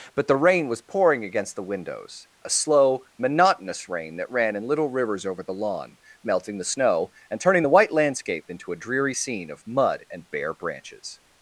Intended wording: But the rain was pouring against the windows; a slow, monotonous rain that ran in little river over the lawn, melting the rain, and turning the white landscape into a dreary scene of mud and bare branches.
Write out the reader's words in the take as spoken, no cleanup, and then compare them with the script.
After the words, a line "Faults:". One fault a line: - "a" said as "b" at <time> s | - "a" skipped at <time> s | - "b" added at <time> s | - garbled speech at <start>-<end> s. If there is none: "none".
But the rain was pouring against the windows; a slow, monotonous rain that ran in little rivers over the lawn, melting the snow, and turning the white landscape into a dreary scene of mud and bare branches.
Faults:
- "river" said as "rivers" at 4.9 s
- "rain" said as "snow" at 6.6 s